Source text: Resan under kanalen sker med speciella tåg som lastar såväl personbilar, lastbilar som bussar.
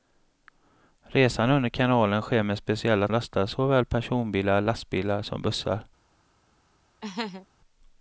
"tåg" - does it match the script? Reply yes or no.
no